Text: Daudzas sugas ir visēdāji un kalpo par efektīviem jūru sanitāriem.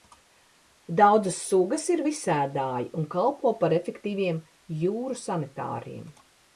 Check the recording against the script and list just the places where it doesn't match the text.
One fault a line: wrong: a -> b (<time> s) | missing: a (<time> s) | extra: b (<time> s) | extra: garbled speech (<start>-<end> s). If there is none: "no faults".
no faults